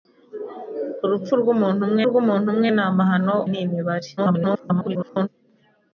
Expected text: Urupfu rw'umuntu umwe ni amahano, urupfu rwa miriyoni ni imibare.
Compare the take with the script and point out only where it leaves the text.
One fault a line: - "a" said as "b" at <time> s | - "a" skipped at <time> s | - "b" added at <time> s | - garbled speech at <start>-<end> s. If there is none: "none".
- "rw'umuntu umwe" added at 2.1 s
- "urupfu rwa miriyoni" skipped at 3.4 s
- garbled speech at 4.2-5.3 s